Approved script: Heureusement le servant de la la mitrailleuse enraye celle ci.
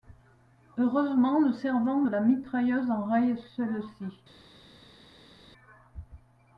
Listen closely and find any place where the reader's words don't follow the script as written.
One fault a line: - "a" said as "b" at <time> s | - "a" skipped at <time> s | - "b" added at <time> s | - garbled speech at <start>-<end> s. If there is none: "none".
- "la" skipped at 2.2 s